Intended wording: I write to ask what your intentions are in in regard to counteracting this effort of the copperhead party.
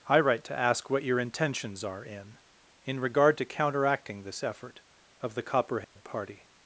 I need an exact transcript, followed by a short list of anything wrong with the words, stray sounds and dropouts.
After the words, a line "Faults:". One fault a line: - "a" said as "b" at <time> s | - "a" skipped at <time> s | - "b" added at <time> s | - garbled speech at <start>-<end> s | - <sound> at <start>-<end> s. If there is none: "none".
I write to ask what your intentions are in in regard to counteracting this effort of the copperhead party.
Faults:
- dropout at 5.8-6.0 s